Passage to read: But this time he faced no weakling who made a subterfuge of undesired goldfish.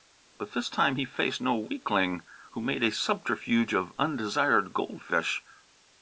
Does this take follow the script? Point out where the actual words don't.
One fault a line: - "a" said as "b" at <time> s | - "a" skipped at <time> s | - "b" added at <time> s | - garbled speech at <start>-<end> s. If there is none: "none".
none